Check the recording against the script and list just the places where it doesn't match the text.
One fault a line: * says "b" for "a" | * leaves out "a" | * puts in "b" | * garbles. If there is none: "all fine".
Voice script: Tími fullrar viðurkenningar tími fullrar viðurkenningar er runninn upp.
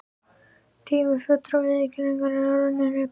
* leaves out "tími fullrar viðurkenningar"